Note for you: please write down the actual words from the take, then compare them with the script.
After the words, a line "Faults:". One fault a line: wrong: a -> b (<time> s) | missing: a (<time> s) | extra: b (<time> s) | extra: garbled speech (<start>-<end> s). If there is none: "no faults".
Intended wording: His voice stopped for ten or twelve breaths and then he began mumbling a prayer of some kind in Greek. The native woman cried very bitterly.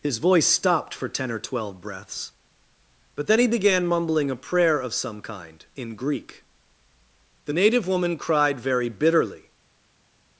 His voice stopped for ten or twelve breaths but then he began mumbling a prayer of some kind in Greek. The native woman cried very bitterly.
Faults:
wrong: and -> but (3.2 s)